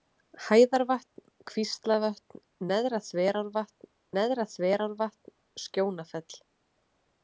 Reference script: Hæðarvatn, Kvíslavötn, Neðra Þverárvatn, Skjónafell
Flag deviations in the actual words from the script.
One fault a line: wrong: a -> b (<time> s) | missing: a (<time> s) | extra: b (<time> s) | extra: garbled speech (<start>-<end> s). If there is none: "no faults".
extra: Neðra Þverárvatn (4.2 s)